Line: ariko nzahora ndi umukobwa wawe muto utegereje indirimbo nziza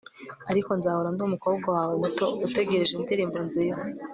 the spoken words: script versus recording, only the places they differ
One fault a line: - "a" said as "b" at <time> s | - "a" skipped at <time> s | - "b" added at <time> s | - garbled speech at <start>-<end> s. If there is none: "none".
none